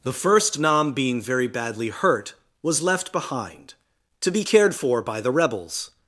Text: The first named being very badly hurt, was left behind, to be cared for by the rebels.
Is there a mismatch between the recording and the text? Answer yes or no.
yes